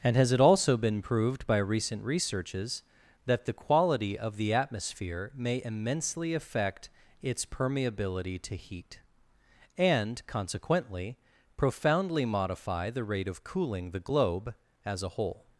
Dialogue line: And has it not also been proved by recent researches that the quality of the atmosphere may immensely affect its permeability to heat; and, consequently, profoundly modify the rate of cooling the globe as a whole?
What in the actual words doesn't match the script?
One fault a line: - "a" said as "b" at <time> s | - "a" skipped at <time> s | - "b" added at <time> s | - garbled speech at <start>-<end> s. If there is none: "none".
- "not" skipped at 0.4 s